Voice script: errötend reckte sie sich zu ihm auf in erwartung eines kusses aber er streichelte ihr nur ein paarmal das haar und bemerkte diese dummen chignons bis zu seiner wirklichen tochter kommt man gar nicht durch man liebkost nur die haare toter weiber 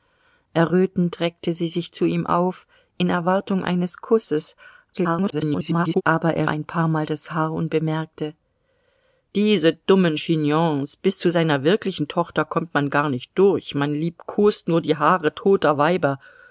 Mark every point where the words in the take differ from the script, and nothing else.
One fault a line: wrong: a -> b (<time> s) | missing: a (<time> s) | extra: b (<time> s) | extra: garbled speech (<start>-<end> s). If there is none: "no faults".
extra: garbled speech (4.9-6.0 s)
missing: streichelte ihr nur (6.5 s)